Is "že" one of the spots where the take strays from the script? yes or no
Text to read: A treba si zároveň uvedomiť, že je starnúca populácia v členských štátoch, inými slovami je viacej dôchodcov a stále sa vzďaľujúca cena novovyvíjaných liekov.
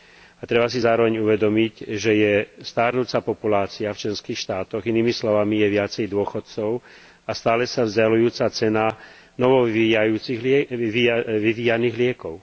no